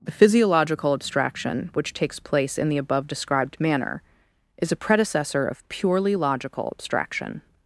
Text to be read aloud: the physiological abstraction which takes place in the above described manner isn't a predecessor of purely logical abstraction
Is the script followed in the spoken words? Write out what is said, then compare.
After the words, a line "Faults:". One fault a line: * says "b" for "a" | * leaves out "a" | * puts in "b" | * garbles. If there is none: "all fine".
the physiological abstraction which takes place in the above described manner is a predecessor of purely logical abstraction
Faults:
* says "is" for "isn't"